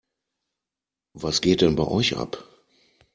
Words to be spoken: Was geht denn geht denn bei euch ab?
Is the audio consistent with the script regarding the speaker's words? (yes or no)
no